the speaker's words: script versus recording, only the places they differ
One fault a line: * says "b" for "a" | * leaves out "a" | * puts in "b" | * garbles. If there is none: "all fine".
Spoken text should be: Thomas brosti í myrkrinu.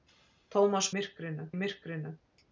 * says "myrkrinu" for "brosti"